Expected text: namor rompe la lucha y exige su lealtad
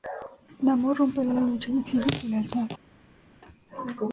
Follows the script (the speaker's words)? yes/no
no